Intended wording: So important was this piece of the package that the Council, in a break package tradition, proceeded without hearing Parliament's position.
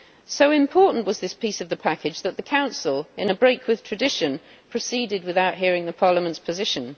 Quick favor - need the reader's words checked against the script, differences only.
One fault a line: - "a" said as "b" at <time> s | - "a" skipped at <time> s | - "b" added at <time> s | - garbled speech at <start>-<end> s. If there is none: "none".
- "package" said as "with" at 3.7 s